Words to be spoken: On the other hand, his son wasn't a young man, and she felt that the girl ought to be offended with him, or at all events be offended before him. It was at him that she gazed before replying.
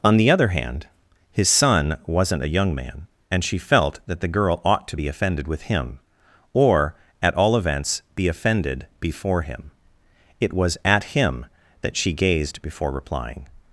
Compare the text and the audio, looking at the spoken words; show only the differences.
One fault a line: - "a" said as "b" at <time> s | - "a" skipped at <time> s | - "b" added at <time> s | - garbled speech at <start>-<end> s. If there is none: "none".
none